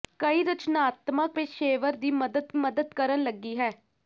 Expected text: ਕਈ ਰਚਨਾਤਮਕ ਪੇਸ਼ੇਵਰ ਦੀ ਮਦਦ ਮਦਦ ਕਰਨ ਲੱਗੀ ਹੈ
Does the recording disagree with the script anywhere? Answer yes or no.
no